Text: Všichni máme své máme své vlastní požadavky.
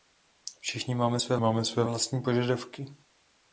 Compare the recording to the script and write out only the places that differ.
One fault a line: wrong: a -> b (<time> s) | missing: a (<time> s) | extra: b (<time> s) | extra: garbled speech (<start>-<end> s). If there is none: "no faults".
no faults